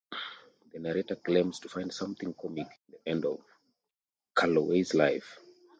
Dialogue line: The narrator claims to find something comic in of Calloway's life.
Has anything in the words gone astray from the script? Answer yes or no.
yes